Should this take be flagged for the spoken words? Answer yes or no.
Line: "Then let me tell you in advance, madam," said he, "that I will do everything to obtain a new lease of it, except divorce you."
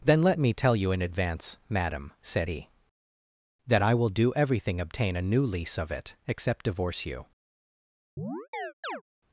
yes